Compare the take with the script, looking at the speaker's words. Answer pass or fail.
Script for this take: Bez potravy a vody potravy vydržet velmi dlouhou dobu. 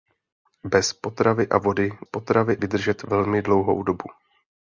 pass